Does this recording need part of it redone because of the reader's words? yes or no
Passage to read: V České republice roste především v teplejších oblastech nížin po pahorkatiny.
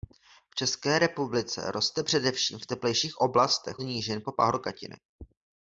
no